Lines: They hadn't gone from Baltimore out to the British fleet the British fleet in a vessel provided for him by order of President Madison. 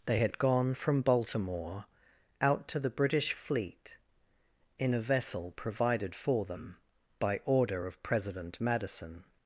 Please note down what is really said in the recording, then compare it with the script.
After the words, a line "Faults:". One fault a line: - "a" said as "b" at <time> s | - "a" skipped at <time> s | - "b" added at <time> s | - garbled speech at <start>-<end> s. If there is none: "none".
They had gone from Baltimore out to the British fleet in a vessel provided for them by order of President Madison.
Faults:
- "hadn't" said as "had" at 0.2 s
- "the British fleet" skipped at 4.0 s
- "him" said as "them" at 6.5 s